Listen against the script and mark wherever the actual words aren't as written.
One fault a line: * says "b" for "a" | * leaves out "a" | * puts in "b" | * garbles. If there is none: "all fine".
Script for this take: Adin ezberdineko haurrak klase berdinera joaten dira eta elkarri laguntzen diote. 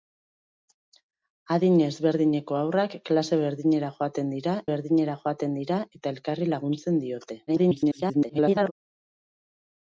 * puts in "berdinera joaten dira"
* garbles